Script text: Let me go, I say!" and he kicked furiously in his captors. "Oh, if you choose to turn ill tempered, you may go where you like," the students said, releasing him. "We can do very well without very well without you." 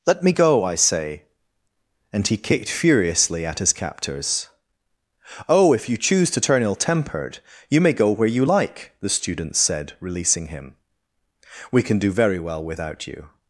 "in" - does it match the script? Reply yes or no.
no